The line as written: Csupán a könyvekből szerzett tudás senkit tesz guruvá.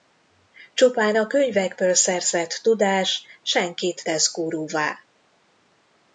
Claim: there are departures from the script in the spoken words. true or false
false